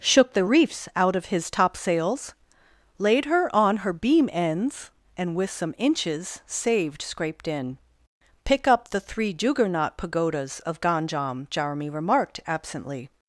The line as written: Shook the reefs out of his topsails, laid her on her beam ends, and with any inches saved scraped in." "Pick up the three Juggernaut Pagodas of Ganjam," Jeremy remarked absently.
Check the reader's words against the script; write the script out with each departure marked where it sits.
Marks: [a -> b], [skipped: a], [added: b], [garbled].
Shook the reefs out of his topsails, laid her on her beam ends, and with [any -> some] inches saved scraped in." "Pick up the three Juggernaut Pagodas of Ganjam," Jeremy remarked absently.